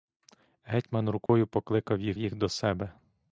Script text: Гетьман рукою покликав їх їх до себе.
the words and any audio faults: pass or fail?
fail